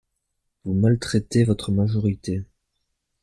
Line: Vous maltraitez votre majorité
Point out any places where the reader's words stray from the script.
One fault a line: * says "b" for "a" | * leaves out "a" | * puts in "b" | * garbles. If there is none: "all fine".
all fine